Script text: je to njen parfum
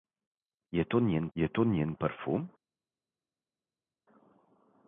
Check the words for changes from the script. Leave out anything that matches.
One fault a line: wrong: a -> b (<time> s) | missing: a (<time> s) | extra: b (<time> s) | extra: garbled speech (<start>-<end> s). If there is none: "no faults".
extra: je to njen (1.3 s)